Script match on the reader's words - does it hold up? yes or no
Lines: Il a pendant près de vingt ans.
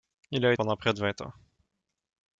yes